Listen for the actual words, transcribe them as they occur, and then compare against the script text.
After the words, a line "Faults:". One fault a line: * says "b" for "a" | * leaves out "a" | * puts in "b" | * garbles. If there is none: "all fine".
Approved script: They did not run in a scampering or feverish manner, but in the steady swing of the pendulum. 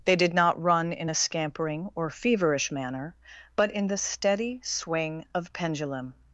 They did not run in a scampering or feverish manner, but in the steady swing of pendulum.
Faults:
* leaves out "the"